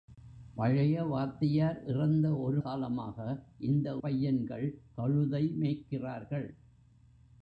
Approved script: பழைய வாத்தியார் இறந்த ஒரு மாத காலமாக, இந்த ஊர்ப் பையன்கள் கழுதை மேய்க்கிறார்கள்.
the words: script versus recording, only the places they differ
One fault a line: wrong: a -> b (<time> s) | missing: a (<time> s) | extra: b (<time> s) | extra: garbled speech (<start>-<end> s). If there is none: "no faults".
missing: மாத (2.6 s)
missing: ஊர்ப் (4.0 s)